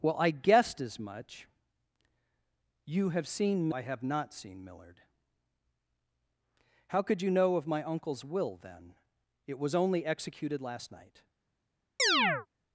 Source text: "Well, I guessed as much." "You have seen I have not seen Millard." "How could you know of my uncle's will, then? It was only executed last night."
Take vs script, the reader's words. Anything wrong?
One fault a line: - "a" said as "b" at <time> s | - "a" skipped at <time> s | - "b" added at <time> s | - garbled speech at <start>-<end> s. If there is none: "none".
none